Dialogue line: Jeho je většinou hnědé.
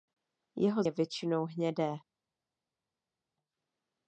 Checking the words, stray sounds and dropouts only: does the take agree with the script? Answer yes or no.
yes